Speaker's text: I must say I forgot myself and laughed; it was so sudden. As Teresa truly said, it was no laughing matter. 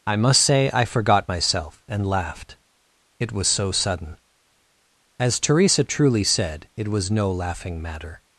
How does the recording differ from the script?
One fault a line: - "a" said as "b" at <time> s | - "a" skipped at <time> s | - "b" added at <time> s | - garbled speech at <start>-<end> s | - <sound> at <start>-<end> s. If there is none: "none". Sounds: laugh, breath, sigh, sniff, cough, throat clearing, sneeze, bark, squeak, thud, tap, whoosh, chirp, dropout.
none